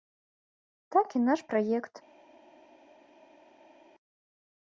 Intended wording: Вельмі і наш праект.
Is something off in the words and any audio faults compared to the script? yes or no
yes